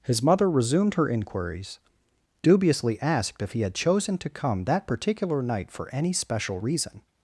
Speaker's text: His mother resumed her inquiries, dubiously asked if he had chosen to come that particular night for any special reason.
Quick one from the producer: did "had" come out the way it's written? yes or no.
yes